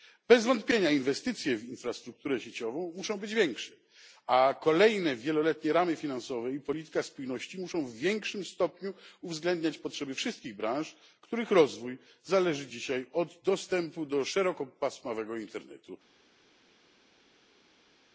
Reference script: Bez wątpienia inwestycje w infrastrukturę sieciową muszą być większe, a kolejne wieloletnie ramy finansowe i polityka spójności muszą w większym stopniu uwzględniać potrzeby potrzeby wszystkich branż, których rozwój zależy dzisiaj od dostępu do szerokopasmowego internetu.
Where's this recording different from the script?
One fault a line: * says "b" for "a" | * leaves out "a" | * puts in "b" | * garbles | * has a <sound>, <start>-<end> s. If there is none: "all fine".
* leaves out "potrzeby"